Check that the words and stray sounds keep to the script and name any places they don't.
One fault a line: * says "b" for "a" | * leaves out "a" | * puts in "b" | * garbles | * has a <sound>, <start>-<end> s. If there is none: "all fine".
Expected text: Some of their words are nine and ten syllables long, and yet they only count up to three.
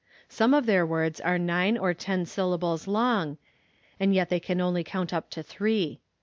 * says "or" for "and"
* puts in "can"